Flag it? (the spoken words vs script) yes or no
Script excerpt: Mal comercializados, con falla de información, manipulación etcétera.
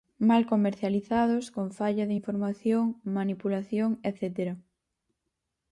no